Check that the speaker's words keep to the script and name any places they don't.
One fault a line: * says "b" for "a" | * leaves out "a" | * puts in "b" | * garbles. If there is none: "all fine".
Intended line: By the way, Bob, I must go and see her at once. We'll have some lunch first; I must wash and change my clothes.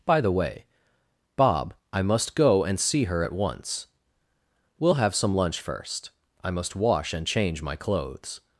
all fine